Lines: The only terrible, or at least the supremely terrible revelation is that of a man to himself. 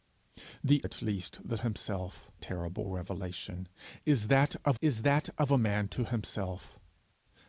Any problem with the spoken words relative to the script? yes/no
yes